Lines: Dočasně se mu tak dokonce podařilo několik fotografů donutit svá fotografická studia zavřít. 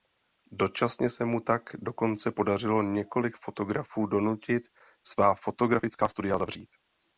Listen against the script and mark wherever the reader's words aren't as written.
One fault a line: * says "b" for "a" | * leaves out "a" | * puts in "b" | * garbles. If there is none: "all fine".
all fine